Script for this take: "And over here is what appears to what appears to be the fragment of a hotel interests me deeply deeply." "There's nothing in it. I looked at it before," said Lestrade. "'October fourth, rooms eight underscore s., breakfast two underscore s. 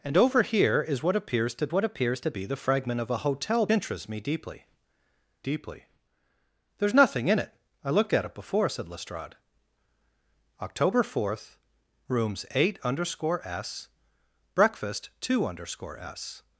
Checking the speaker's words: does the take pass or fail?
pass